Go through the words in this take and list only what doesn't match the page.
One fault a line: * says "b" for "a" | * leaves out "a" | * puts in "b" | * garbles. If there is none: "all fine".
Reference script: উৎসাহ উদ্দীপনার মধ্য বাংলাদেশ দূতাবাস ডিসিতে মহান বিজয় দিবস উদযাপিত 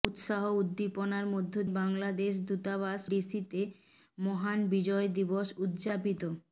all fine